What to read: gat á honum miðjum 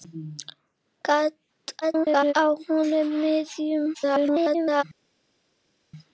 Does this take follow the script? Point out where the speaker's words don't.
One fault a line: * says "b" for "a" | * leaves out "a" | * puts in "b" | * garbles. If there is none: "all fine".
* garbles
* garbles